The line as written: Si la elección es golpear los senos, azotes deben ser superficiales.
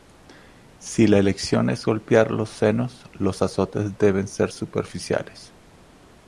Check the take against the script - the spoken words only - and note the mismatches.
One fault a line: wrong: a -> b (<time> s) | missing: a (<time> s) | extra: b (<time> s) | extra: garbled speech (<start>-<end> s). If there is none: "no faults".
extra: los (3.1 s)